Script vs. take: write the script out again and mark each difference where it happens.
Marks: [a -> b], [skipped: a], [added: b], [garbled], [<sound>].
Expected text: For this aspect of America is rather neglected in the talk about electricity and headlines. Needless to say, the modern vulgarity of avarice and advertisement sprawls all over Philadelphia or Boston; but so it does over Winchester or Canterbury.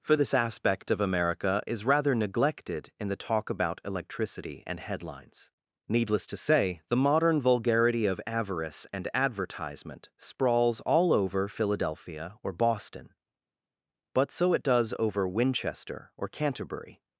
For this aspect of America is rather neglected in the talk about electricity and headlines. Needless to say, the modern vulgarity of avarice and advertisement sprawls all over Philadelphia or Boston; but so it does over Winchester or Canterbury.